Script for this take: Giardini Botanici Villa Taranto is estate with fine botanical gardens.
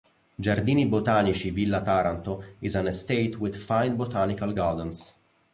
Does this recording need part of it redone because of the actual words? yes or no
yes